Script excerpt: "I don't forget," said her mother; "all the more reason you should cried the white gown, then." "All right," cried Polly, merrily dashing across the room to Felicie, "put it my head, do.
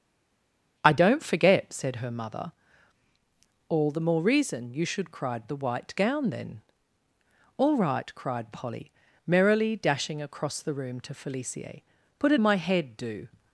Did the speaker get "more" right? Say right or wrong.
right